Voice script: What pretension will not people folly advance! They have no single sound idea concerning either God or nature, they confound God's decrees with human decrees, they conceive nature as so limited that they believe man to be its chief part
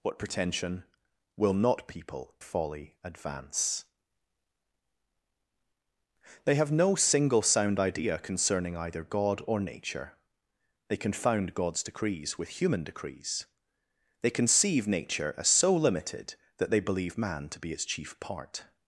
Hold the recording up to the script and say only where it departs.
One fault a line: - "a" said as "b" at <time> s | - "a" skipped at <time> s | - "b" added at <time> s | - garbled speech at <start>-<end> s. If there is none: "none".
none